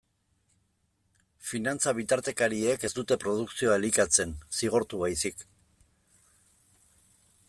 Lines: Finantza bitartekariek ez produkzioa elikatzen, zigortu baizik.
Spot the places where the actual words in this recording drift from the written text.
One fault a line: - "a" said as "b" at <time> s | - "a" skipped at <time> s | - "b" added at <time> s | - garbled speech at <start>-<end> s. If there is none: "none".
- "dute" added at 3.0 s